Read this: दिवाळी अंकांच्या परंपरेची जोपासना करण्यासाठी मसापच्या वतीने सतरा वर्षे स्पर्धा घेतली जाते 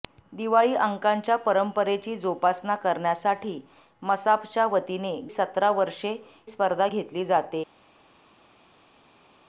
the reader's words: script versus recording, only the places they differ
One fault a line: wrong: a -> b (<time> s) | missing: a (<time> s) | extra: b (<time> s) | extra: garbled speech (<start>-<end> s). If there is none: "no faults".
no faults